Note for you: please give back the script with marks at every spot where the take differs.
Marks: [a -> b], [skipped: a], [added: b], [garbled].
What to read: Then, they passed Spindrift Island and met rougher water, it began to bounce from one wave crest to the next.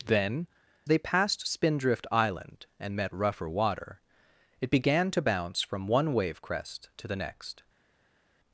Then, they passed Spindrift Island and met rougher water, it began to bounce from one wave crest to the next.